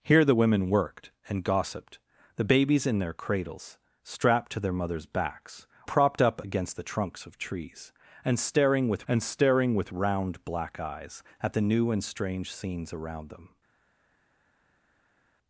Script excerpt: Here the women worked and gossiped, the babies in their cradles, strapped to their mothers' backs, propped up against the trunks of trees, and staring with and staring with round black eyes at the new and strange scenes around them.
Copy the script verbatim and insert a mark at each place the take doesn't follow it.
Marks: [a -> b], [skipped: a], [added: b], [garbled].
Here the women worked and gossiped, the babies in their cradles, strapped to their mothers' backs, propped up against the trunks of trees, and staring with and staring with round black eyes at the new and strange scenes around them.